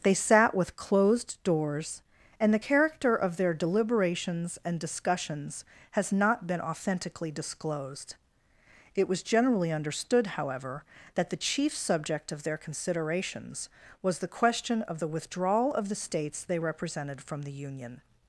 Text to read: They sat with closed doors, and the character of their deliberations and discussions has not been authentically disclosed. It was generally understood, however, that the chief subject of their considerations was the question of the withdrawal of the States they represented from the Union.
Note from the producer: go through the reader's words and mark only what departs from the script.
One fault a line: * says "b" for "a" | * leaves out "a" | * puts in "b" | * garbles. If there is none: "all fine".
all fine